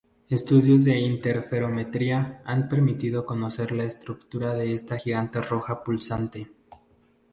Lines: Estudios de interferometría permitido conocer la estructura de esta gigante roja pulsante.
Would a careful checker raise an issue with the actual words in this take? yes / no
yes